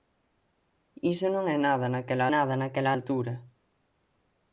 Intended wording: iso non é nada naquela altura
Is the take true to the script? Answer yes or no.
no